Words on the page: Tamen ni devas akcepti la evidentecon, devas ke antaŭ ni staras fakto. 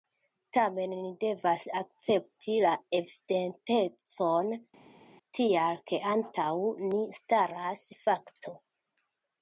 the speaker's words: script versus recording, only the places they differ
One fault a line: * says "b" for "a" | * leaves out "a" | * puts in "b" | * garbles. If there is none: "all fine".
* says "tial" for "devas"